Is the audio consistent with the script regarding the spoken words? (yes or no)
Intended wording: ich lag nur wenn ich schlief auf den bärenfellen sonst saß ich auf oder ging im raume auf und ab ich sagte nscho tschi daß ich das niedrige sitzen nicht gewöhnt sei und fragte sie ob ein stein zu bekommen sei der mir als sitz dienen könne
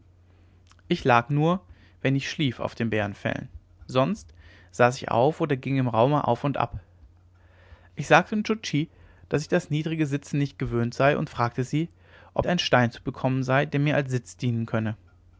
yes